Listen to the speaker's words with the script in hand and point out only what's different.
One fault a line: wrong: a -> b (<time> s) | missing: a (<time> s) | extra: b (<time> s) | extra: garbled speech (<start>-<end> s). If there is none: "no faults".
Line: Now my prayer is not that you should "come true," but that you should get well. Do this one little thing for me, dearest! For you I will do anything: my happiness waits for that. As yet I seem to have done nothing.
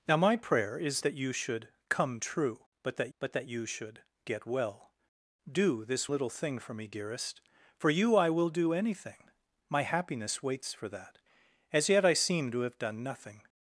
missing: not (1.1 s)
extra: but that (3.2 s)
missing: one (6.1 s)